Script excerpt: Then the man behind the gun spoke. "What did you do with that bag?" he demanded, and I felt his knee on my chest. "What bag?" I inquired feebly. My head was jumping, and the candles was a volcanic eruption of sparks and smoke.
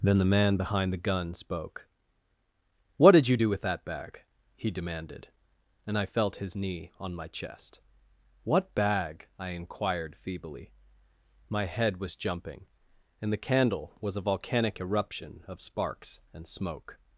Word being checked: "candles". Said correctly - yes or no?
no